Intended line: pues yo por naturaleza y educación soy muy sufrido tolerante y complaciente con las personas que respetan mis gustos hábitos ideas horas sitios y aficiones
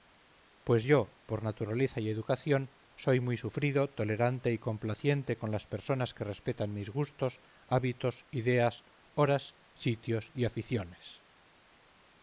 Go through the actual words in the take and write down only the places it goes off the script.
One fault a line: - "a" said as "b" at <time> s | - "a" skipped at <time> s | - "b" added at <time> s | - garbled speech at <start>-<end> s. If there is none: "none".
none